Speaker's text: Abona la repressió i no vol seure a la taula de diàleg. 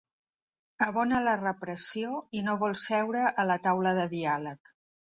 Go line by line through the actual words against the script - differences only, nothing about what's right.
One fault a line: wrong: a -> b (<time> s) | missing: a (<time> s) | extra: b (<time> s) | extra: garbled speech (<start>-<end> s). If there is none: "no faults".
no faults